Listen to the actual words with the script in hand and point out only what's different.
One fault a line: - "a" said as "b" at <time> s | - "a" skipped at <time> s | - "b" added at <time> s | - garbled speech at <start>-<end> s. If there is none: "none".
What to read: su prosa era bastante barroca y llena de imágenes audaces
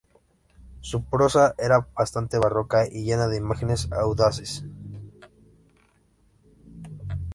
none